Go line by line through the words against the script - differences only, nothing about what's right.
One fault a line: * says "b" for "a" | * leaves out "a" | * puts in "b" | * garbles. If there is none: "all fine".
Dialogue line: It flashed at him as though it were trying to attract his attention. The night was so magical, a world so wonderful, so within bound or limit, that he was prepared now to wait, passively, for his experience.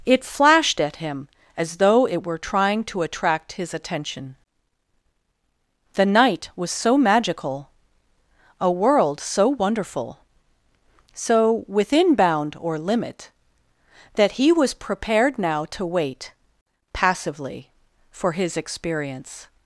all fine